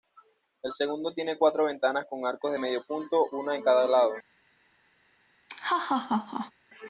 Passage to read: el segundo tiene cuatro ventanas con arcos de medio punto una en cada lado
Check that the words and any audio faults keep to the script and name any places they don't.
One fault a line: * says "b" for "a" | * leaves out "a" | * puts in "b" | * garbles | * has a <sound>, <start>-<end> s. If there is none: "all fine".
* has a laugh, 5.5-6.5 s